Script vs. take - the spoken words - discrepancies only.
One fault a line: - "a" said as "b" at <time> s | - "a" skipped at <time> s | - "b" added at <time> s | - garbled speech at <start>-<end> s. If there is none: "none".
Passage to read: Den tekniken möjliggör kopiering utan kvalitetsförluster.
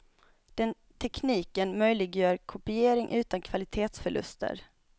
none